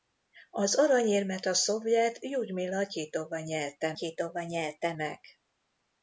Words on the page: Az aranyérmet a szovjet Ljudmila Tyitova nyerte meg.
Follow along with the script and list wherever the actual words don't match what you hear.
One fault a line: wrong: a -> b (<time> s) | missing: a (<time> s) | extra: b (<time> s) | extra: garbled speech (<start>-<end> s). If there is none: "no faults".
extra: Tyitova nyerte (3.9 s)